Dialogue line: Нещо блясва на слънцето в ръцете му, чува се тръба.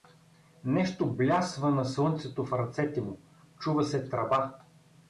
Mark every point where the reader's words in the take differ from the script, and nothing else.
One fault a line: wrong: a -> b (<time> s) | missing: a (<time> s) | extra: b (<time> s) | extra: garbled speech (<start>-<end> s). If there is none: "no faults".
no faults